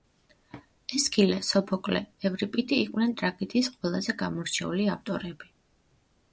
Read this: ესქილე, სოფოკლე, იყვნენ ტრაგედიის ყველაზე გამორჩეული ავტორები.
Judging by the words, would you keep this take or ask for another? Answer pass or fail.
fail